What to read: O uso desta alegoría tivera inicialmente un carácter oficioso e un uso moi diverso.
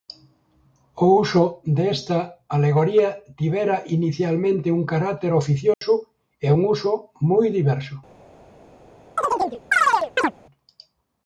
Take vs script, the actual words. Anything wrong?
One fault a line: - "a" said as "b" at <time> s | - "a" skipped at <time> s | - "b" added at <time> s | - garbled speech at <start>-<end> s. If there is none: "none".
none